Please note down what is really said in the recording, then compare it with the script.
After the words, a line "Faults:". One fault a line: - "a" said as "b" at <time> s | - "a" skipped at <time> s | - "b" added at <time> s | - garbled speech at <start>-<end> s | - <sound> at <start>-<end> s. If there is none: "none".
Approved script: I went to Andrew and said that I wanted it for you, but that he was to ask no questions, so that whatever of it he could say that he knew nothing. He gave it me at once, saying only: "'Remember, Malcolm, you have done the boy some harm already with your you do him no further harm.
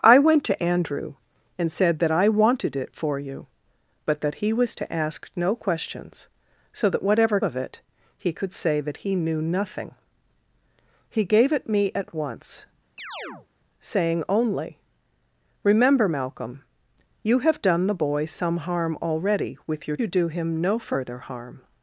I went to Andrew and said that I wanted it for you, but that he was to ask no questions, so that whatever of it he could say that he knew nothing. He gave it me at once, saying only: "'Remember, Malcolm, you have done the boy some harm already with your you do him no further harm.
Faults:
- chirp at 13.0-13.5 s